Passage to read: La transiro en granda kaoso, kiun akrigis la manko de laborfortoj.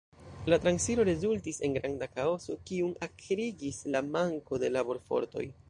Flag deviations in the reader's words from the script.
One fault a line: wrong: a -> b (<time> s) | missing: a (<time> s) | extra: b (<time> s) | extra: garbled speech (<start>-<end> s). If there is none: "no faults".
extra: rezultis (1.1 s)